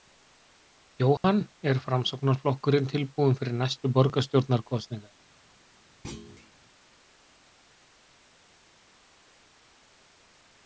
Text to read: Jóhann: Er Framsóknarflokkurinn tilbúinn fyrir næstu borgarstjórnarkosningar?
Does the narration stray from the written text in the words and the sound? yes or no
yes